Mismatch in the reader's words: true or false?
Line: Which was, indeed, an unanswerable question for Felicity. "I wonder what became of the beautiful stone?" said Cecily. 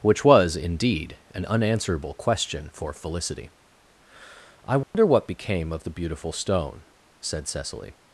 false